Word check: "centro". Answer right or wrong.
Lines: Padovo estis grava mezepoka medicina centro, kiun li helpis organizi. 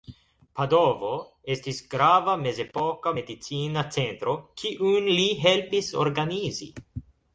right